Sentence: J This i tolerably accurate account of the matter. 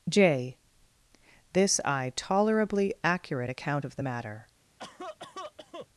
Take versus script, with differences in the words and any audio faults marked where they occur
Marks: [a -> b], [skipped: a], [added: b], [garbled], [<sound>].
J This i tolerably accurate account of the matter. [cough]